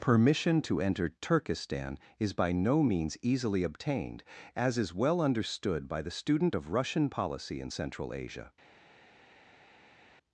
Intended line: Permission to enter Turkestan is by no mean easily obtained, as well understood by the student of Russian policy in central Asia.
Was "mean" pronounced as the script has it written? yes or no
no